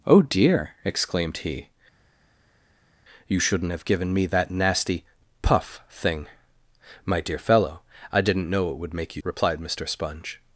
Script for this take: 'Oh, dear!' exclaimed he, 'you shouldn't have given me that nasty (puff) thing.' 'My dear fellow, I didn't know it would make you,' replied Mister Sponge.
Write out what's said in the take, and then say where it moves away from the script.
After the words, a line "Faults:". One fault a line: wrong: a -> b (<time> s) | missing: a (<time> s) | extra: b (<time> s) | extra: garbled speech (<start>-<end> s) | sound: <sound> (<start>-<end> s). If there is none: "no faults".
'Oh, dear!' exclaimed he, 'you shouldn't have given me that nasty (puff) thing.' 'My dear fellow, I didn't know it would make you,' replied Mister Sponge.
Faults:
no faults